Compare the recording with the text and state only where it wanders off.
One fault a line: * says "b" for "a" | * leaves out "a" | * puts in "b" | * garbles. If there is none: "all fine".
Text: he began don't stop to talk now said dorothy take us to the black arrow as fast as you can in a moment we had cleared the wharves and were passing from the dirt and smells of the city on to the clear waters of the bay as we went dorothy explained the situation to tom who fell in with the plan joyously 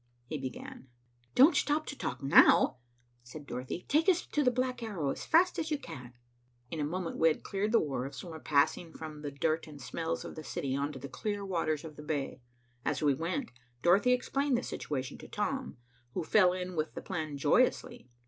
all fine